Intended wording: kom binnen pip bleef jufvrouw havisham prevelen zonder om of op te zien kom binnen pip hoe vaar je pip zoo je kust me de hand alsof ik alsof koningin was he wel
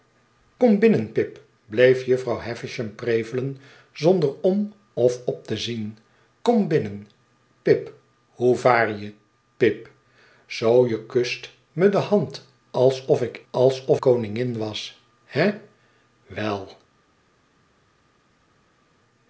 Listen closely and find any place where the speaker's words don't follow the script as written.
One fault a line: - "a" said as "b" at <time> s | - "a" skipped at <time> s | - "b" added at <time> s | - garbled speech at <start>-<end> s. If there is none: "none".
none